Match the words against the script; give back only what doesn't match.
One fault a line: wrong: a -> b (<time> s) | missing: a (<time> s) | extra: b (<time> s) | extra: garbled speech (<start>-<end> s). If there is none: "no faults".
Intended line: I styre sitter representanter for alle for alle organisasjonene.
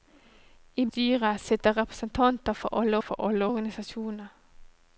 no faults